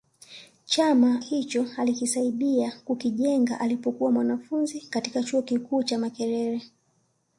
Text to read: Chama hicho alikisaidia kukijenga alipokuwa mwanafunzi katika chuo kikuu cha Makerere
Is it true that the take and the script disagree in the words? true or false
false